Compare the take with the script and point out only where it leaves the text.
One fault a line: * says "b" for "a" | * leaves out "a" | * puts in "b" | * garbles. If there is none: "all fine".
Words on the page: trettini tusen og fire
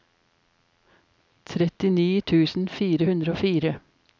* puts in "fire hundre"